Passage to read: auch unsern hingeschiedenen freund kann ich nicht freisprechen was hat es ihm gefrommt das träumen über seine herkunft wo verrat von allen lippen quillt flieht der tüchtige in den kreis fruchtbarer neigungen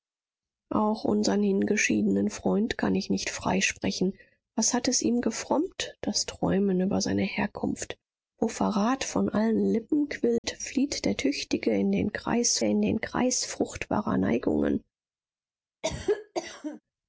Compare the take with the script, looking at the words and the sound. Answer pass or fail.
fail